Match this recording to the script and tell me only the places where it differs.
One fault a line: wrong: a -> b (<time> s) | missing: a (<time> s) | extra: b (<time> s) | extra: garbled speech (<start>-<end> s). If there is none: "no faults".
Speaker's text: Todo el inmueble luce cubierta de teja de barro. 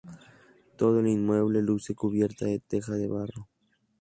no faults